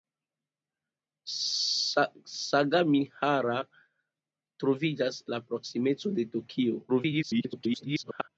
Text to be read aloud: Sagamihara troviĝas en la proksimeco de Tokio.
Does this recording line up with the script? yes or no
no